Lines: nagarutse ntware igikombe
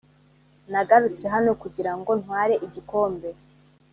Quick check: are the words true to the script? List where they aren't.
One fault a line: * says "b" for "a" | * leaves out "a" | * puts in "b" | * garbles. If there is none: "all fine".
* puts in "hano kugira ngo"